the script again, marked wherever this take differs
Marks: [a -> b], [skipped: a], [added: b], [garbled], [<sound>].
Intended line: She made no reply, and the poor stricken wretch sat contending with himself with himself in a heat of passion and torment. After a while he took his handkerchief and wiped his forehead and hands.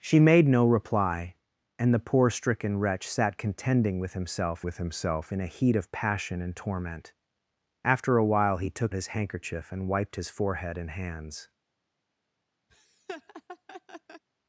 She made no reply, and the poor stricken wretch sat contending with himself with himself in a heat of passion and torment. After a while he took his handkerchief and wiped his forehead and hands. [laugh]